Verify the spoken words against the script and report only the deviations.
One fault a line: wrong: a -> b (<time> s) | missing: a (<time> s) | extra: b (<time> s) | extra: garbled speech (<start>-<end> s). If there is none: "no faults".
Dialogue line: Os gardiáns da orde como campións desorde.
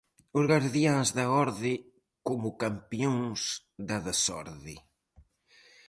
extra: da (3.9 s)